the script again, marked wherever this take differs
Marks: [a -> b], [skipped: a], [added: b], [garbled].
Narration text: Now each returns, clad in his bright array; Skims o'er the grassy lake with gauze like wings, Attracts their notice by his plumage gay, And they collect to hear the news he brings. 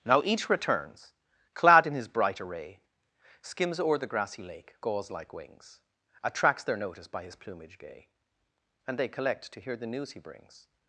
Now each returns, clad in his bright array; Skims o'er the grassy lake [skipped: with] gauze like wings, Attracts their notice by his plumage gay, And they collect to hear the news he brings.